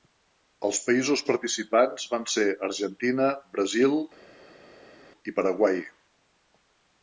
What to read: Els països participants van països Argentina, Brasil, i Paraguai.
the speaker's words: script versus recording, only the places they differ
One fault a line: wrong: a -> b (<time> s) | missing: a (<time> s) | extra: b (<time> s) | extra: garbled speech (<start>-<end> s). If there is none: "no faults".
wrong: països -> ser (2.4 s)